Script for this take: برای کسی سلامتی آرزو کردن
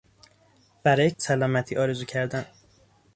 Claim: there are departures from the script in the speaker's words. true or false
true